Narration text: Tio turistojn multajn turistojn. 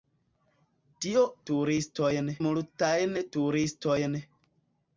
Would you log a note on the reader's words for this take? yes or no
no